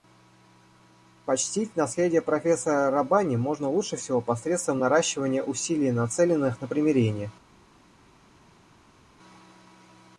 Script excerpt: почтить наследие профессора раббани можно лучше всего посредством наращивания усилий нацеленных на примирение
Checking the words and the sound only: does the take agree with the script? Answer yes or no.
yes